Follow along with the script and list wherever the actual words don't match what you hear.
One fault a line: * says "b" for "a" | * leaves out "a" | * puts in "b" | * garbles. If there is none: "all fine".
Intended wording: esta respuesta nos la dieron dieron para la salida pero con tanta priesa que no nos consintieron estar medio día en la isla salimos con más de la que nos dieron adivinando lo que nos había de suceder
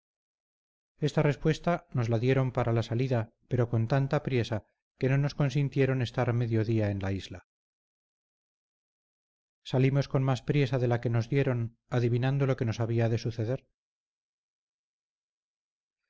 * leaves out "dieron"
* puts in "priesa"